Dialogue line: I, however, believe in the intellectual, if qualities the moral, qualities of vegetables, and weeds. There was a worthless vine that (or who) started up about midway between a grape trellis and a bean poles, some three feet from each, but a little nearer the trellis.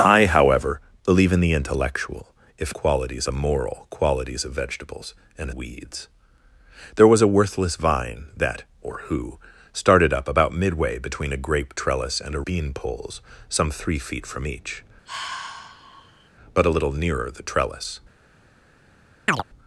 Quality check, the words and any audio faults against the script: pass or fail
fail